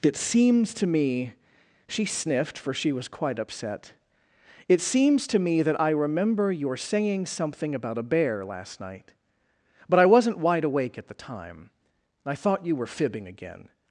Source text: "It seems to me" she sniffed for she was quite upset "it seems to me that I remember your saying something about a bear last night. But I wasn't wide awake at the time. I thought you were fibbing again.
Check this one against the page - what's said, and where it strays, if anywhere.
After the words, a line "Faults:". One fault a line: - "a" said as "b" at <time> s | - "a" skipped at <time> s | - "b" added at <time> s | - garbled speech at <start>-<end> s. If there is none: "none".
"It seems to me" she sniffed for she was quite upset "it seems to me that I remember your saying something about a bear last night. But I wasn't wide awake at the time. I thought you were fibbing again.
Faults:
none